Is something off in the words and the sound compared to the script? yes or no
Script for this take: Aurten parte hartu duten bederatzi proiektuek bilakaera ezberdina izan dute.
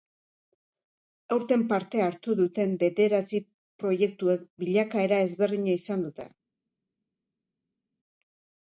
no